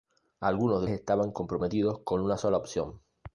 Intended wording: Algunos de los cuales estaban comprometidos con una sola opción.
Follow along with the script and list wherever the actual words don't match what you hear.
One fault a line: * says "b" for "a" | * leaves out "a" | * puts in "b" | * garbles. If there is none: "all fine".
* leaves out "los cuales"